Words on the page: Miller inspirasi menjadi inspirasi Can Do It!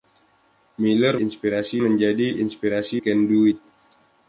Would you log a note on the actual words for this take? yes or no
no